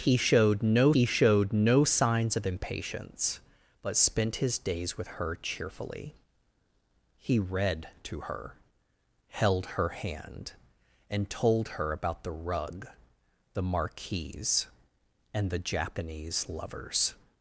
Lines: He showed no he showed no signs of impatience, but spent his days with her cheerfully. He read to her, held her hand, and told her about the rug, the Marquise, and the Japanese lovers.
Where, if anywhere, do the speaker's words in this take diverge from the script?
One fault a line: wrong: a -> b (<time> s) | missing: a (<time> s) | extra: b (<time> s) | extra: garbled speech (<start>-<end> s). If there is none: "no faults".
no faults